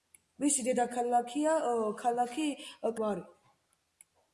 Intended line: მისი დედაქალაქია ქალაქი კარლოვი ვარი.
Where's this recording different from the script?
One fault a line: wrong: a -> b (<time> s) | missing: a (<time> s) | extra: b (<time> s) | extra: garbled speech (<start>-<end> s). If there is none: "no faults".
missing: კარლოვი (2.5 s)